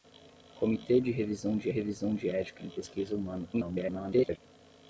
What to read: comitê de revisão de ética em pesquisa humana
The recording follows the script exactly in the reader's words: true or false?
false